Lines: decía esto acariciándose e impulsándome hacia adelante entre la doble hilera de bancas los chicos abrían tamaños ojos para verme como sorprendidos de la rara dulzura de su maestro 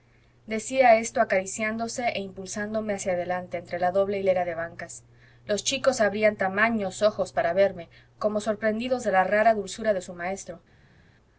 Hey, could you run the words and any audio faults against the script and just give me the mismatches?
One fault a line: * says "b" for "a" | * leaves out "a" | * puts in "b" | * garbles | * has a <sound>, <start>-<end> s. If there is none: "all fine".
all fine